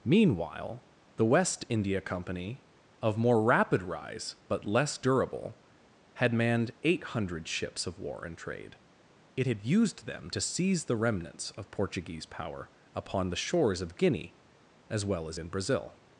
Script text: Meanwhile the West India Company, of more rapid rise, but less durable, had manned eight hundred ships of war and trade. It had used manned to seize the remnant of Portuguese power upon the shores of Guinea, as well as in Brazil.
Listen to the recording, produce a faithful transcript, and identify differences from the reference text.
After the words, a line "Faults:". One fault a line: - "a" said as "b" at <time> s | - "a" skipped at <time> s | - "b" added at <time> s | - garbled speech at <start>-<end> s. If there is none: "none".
Meanwhile the West India Company, of more rapid rise, but less durable, had manned eight hundred ships of war and trade. It had used them to seize the remnants of Portuguese power upon the shores of Guinea, as well as in Brazil.
Faults:
- "manned" said as "them" at 10.0 s
- "remnant" said as "remnants" at 11.0 s